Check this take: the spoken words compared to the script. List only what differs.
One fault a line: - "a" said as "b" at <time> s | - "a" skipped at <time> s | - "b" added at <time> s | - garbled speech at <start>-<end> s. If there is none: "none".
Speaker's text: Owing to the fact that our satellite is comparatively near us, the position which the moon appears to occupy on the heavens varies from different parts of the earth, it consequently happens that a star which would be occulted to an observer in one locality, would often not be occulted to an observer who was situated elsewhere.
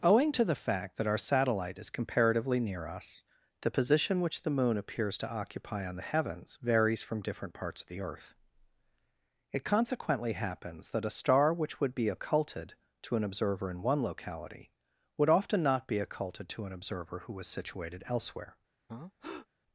none